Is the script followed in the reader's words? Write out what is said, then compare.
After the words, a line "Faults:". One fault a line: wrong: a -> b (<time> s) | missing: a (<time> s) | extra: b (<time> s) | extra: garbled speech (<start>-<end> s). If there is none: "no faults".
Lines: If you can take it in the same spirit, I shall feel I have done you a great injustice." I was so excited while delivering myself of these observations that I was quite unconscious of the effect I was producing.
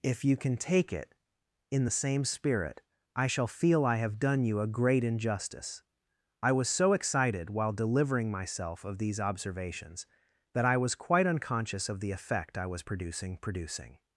If you can take it in the same spirit, I shall feel I have done you a great injustice." I was so excited while delivering myself of these observations that I was quite unconscious of the effect I was producing producing.
Faults:
extra: producing (13.4 s)